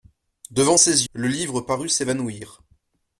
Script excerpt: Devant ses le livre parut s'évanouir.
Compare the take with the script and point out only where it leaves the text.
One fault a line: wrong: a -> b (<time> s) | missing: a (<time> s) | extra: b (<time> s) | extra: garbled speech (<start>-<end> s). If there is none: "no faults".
no faults